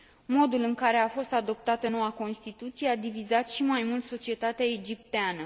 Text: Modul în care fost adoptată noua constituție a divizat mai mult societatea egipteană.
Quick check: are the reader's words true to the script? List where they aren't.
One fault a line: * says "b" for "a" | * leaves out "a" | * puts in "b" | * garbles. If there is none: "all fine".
* puts in "a"
* puts in "și"